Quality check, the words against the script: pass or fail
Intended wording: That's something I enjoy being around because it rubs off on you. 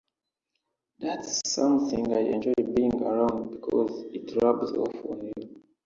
pass